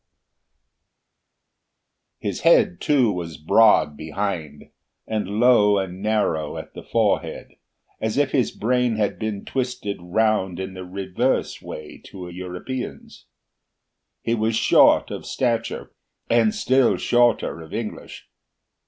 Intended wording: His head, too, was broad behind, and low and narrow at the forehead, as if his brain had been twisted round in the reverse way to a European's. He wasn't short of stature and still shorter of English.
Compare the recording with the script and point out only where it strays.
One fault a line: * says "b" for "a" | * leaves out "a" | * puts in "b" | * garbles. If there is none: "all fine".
* says "was" for "wasn't"